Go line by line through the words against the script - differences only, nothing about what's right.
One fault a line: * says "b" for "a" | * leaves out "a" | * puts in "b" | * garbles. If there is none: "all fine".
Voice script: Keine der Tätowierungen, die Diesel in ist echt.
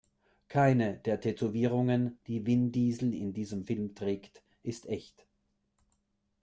* puts in "Vin"
* puts in "diesem Film trägt"